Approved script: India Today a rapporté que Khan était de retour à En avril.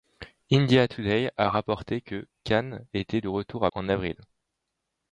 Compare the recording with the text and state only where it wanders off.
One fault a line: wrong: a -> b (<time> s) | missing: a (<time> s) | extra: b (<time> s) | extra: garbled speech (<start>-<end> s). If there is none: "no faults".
no faults